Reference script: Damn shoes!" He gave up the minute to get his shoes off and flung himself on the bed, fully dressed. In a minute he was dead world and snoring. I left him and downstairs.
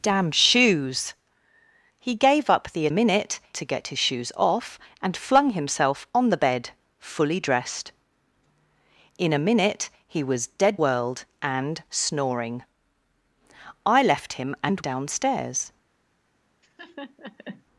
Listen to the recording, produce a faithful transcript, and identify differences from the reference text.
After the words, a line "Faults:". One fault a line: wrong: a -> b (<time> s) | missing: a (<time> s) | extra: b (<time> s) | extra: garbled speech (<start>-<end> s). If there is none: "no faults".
Damn shoes!" He gave up the minute to get his shoes off and flung himself on the bed, fully dressed. In a minute he was dead world and snoring. I left him and downstairs.
Faults:
no faults